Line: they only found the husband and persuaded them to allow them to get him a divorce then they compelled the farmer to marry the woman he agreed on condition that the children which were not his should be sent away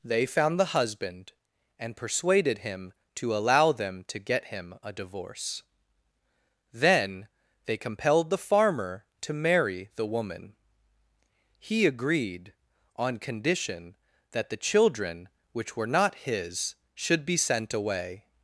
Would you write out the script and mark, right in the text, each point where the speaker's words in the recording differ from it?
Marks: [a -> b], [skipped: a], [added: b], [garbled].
they [skipped: only] found the husband and persuaded [them -> him] to allow them to get him a divorce then they compelled the farmer to marry the woman he agreed on condition that the children which were not his should be sent away